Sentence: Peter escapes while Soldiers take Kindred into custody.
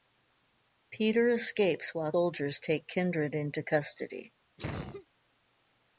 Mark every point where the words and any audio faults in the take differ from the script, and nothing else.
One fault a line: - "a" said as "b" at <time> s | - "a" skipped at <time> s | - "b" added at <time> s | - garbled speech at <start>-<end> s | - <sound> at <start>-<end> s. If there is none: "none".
- cough at 4.6-5.1 s